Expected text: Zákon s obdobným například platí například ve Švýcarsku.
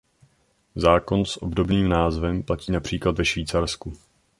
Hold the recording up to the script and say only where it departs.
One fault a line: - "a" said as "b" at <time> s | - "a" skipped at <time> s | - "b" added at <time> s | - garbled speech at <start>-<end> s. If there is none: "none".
- "například" said as "názvem" at 1.9 s